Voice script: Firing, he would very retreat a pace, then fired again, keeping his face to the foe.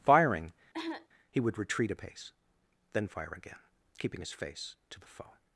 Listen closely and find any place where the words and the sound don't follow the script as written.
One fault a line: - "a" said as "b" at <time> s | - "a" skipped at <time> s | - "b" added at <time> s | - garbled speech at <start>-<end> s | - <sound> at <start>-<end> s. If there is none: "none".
- cough at 0.7-1.1 s
- "very" skipped at 1.6 s
- "fired" said as "fire" at 3.1 s